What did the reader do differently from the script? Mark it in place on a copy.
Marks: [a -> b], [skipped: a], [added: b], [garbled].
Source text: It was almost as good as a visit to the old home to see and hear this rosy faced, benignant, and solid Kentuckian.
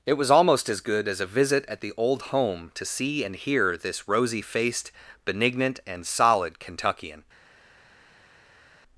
It was almost as good as a visit [to -> at] the old home to see and hear this rosy faced, benignant, and solid Kentuckian.